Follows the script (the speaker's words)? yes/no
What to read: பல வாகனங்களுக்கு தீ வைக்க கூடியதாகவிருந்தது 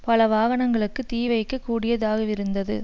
yes